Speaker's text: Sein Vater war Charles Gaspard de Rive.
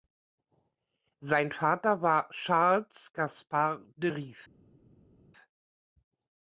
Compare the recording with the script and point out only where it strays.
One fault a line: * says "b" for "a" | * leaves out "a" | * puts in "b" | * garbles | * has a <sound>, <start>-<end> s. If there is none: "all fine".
all fine